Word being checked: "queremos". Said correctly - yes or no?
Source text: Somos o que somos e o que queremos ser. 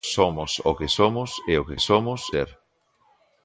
no